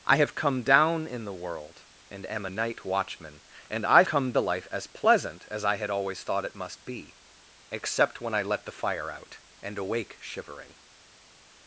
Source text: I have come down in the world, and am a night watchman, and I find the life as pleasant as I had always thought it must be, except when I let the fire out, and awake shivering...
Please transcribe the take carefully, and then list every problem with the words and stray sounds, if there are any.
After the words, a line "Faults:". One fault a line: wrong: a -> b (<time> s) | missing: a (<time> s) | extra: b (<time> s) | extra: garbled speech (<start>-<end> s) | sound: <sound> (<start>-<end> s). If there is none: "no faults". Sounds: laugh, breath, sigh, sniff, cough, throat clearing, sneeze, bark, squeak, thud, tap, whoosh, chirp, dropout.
I have come down in the world, and am a night watchman, and I come the life as pleasant as I had always thought it must be, except when I let the fire out, and awake shivering...
Faults:
wrong: find -> come (4.0 s)